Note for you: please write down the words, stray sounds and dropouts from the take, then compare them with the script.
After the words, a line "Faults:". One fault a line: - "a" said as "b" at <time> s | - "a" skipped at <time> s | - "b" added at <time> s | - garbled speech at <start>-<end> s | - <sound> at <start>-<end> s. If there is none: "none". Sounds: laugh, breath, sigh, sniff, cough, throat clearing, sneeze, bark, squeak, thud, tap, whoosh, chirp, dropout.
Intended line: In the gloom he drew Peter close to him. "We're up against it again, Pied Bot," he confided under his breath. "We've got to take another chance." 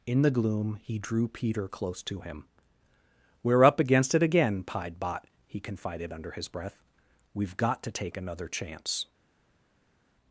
In the gloom he drew Peter close to him. "We're up against it again, Pied Bot," he confided under his breath. "We've got to take another chance."
Faults:
none